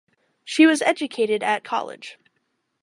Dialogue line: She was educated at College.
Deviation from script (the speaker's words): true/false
false